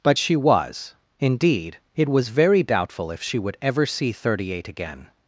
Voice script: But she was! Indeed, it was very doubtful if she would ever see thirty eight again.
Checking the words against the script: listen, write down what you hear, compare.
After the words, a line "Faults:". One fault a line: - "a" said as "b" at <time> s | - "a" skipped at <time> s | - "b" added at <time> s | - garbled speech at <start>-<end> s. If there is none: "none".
But she was! Indeed, it was very doubtful if she would ever see thirty eight again.
Faults:
none